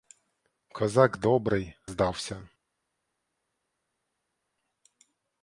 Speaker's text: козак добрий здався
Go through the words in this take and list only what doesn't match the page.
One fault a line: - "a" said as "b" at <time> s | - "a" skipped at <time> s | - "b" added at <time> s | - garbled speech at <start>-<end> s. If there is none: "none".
none